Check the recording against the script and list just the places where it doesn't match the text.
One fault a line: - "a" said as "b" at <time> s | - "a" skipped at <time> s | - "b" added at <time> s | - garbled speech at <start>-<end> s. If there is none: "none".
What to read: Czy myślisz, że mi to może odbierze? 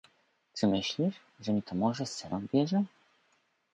- "sen" added at 2.0 s